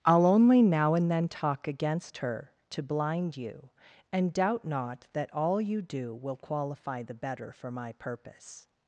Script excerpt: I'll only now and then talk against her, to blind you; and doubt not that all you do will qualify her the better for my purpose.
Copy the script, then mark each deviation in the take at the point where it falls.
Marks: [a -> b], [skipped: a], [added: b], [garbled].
I'll only now and then talk against her, to blind you; and doubt not that all you do will qualify [skipped: her] the better for my purpose.